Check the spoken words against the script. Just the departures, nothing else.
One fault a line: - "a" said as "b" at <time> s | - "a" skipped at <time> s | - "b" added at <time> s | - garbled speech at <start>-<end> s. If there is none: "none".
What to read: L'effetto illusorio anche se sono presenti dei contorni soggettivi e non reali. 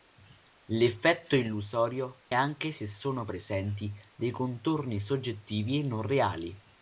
none